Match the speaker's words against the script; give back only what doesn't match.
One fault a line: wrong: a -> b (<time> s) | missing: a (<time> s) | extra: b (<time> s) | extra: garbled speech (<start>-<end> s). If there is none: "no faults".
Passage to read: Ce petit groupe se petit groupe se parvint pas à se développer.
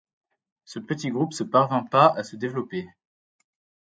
missing: petit groupe se (1.4 s)